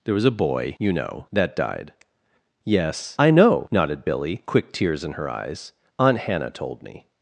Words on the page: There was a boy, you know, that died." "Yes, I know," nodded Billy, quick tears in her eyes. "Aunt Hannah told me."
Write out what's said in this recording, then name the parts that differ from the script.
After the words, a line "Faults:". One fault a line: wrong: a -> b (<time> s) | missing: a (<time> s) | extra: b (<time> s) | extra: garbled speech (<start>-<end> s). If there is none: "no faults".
There was a boy, you know, that died." "Yes, I know," nodded Billy, quick tears in her eyes. "Aunt Hannah told me."
Faults:
no faults